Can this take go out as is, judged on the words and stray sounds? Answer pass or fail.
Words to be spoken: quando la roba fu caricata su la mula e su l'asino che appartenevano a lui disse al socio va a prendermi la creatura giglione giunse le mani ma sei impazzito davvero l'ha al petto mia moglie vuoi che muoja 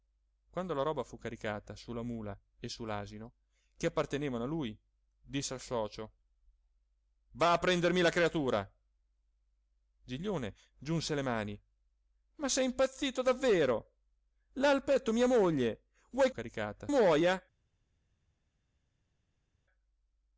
fail